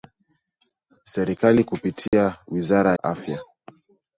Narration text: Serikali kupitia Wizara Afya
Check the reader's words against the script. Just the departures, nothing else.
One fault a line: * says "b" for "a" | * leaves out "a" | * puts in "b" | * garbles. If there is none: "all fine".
all fine